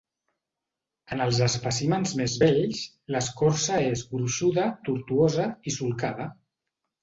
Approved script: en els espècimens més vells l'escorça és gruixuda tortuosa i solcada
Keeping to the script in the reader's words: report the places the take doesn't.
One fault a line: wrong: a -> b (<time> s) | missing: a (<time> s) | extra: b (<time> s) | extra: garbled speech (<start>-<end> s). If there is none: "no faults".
no faults